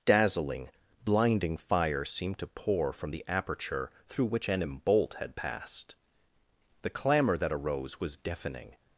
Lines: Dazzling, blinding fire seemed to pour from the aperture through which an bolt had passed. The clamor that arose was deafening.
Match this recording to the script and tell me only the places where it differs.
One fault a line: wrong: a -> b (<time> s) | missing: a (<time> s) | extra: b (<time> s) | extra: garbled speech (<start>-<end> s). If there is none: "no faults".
no faults